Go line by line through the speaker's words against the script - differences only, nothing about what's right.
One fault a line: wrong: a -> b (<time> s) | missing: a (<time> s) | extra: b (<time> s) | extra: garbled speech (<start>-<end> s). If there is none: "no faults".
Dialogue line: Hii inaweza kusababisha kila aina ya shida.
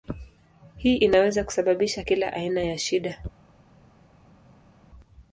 no faults